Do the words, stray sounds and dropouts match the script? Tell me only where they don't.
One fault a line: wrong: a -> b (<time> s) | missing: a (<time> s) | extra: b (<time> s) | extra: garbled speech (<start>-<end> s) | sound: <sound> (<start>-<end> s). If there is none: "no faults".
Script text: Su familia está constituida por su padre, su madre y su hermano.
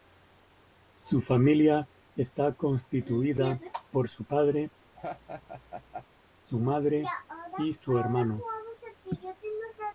sound: laugh (4.9-6.1 s)